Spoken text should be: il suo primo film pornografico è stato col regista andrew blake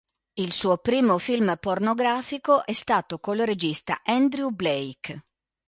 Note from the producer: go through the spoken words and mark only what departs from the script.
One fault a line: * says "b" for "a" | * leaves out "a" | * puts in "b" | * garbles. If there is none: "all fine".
all fine